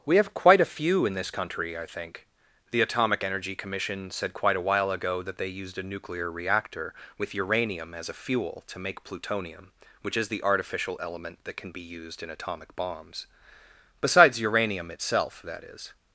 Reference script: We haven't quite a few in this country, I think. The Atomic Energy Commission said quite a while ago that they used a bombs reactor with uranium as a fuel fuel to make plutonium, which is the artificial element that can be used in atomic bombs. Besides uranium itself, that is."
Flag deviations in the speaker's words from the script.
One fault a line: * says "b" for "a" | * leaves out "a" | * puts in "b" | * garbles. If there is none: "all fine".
* says "have" for "haven't"
* says "nuclear" for "bombs"
* leaves out "fuel"